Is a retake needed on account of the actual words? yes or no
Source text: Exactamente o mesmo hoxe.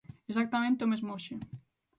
no